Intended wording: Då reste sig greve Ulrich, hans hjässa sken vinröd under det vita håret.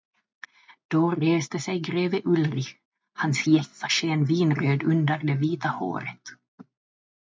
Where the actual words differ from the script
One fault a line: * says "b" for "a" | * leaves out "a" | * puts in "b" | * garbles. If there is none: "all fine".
all fine